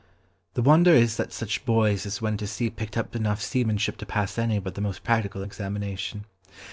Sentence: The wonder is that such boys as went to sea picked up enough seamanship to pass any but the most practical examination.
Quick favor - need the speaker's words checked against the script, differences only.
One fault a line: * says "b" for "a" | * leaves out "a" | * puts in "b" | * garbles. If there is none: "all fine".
all fine